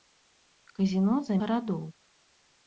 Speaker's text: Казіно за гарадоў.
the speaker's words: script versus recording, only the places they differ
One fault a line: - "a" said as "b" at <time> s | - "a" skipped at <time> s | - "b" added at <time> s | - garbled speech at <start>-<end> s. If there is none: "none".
none